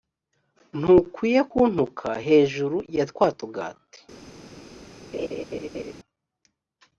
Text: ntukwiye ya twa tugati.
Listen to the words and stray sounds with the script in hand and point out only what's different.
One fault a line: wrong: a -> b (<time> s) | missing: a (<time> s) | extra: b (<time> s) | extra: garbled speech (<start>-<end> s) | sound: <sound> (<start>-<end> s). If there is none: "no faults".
extra: kuntuka hejuru (1.5 s)
sound: laugh (5.1-5.9 s)